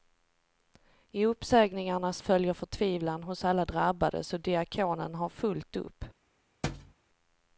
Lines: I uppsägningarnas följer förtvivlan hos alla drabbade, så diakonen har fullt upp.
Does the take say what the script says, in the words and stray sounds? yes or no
no